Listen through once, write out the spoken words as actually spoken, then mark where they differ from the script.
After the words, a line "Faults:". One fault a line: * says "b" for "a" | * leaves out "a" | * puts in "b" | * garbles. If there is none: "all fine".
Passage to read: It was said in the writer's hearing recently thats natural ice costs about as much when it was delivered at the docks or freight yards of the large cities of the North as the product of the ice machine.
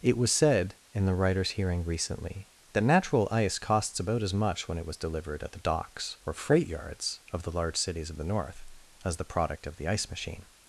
It was said in the writer's hearing recently that natural ice costs about as much when it was delivered at the docks or freight yards of the large cities of the North as the product of the ice machine.
Faults:
* says "that" for "thats"